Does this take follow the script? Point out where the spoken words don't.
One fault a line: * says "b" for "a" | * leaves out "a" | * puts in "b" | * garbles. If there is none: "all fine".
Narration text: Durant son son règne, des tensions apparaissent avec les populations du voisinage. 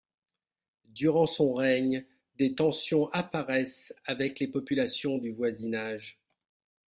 * leaves out "son"